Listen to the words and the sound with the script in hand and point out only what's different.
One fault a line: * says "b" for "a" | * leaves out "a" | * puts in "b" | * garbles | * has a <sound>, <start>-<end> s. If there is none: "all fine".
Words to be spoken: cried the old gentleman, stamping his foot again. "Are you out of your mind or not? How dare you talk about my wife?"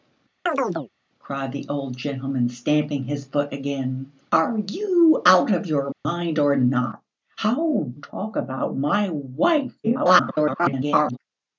* has a chirp, 0.5-0.9 s
* has a dropout, 5.9-6.1 s
* leaves out "dare you"
* garbles